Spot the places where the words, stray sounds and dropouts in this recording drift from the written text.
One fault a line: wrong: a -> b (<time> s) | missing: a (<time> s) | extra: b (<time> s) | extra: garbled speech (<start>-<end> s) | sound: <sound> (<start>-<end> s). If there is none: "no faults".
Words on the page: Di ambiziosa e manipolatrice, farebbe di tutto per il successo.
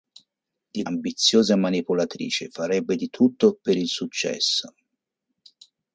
no faults